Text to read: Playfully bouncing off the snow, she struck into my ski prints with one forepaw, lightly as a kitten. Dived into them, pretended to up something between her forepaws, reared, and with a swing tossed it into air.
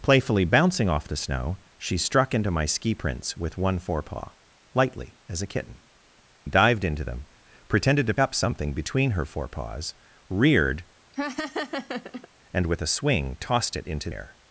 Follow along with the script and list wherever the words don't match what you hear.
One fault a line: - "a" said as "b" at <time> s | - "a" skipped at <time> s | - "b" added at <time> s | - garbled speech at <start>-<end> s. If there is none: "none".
none